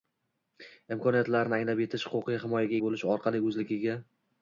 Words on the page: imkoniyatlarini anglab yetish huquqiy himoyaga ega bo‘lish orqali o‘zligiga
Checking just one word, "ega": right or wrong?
wrong